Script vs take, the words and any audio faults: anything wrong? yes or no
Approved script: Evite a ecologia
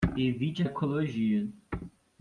no